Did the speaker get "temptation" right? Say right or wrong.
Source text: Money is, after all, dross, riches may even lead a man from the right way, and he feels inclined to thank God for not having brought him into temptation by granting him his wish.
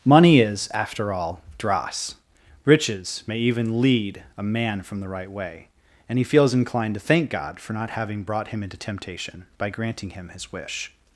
right